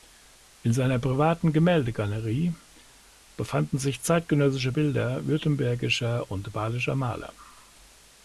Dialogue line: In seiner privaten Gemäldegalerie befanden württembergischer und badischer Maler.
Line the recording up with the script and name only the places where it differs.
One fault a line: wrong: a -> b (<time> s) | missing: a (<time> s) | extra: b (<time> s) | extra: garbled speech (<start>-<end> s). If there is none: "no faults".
extra: sich zeitgenössische Bilder (3.8 s)